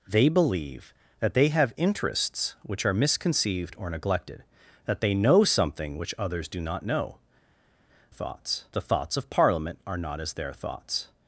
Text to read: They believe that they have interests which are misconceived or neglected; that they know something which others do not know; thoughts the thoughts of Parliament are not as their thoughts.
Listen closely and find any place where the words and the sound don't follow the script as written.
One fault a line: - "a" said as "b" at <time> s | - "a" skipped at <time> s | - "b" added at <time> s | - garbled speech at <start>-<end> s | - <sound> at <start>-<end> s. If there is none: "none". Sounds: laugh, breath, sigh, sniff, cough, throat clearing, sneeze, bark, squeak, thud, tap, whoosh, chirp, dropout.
none